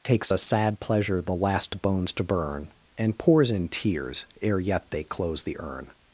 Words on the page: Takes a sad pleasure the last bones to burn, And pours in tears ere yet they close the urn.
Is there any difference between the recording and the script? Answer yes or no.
no